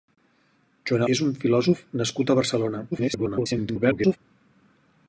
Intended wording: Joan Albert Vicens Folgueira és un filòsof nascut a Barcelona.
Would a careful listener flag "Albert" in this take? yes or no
yes